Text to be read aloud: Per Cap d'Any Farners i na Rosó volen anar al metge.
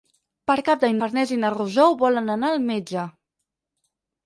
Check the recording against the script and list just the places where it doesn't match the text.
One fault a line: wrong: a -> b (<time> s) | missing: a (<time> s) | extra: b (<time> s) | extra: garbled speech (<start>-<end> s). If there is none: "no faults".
no faults